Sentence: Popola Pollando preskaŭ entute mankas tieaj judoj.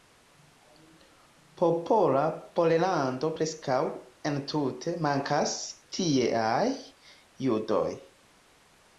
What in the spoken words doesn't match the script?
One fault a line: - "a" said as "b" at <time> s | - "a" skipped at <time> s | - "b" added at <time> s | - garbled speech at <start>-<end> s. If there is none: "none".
none